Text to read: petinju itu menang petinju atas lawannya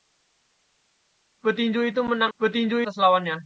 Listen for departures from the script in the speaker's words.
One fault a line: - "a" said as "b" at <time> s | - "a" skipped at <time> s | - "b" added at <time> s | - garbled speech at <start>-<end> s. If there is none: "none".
none